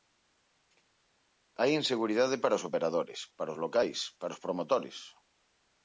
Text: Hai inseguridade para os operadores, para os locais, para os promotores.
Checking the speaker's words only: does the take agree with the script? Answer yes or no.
yes